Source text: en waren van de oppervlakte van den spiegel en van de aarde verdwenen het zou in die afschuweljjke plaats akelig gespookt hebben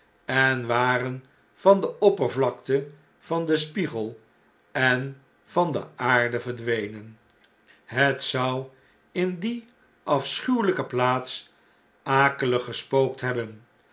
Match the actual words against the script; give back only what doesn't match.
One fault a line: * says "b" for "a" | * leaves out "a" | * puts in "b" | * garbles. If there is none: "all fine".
all fine